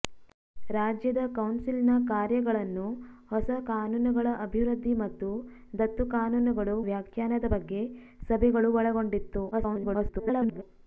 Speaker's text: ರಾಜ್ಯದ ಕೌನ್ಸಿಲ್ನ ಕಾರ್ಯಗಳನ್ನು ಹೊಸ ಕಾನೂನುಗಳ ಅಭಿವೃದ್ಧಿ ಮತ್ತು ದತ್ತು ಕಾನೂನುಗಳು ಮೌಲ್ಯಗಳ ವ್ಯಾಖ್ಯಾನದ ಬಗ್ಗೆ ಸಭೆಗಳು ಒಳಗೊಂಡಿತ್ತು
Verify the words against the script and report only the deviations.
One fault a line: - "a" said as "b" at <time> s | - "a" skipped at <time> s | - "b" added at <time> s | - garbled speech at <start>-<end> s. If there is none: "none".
- "ಮೌಲ್ಯಗಳ" skipped at 6.8 s
- garbled speech at 9.5-10.6 s